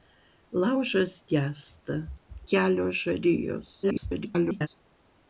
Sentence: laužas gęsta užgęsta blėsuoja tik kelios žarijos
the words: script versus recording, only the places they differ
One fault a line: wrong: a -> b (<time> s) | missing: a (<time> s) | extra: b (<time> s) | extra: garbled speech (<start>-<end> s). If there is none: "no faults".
missing: užgęsta blėsuoja tik (2.0 s)
extra: garbled speech (3.8-4.7 s)